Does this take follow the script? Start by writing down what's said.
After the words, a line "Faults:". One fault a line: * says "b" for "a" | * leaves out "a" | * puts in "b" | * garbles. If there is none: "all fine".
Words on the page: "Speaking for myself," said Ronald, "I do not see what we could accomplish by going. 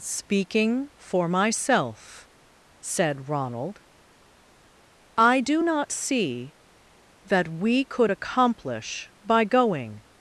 "Speaking for myself," said Ronald, "I do not see that we could accomplish by going.
Faults:
* says "that" for "what"